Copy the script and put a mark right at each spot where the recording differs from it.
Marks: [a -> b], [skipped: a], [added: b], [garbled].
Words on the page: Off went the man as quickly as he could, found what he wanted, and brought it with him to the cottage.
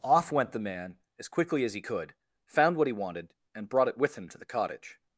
Off went the man as quickly as he could, found what he wanted, and brought it with him to the cottage.